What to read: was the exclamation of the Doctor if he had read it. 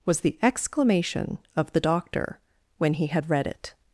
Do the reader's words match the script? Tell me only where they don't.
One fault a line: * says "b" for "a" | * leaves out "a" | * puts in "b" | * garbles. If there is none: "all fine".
* says "when" for "if"